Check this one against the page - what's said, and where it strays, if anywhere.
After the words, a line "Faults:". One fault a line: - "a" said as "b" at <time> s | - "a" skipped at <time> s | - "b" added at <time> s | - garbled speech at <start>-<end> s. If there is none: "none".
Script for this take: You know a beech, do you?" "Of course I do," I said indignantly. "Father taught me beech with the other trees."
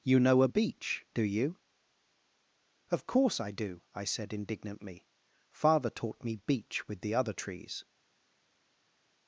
You know a beech, do you?" "Of course I do," I said indignantly. "Father taught me beech with the other trees."
Faults:
none